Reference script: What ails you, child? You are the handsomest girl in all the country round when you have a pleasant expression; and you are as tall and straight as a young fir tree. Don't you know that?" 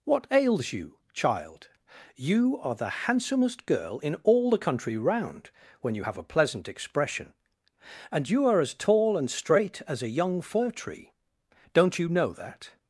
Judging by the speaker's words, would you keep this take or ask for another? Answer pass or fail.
pass